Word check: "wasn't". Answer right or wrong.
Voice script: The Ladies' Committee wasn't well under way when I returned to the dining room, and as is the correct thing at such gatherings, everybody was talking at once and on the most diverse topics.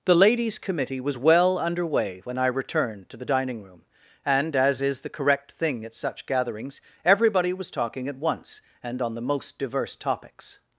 wrong